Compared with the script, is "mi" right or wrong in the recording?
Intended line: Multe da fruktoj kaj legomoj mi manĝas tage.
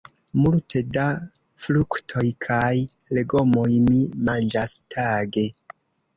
right